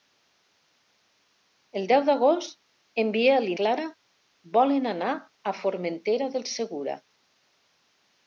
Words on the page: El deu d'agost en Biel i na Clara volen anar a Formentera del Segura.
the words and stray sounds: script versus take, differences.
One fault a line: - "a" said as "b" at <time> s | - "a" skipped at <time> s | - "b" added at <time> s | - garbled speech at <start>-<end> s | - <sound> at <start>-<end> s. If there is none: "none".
- "na" skipped at 3.6 s